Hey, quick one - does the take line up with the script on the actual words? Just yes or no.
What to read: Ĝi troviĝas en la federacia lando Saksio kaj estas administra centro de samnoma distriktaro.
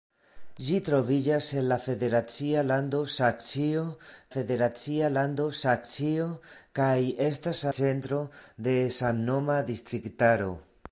no